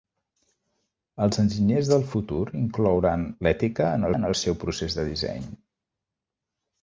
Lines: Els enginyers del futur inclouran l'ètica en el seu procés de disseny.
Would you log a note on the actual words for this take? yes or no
yes